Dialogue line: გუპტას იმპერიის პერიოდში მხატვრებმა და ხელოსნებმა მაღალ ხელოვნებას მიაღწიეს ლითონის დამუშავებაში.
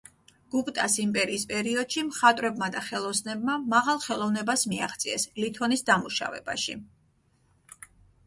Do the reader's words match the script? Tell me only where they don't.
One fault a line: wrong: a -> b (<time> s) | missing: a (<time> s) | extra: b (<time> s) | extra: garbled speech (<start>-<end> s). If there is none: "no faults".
no faults